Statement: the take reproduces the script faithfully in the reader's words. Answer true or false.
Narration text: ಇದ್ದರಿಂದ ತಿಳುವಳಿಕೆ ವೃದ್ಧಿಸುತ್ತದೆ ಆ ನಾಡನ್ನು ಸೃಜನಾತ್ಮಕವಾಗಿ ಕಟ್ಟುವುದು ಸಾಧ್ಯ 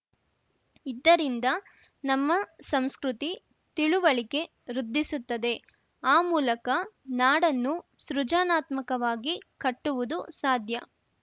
false